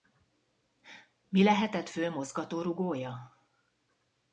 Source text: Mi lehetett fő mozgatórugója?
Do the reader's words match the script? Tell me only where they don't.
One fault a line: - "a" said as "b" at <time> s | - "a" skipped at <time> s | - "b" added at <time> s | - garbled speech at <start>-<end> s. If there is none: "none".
none